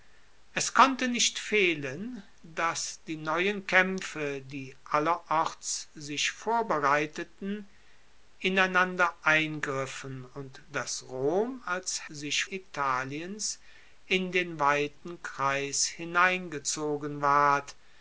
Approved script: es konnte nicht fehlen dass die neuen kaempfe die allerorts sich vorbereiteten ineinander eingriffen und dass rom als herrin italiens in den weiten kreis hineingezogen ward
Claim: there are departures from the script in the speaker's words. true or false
true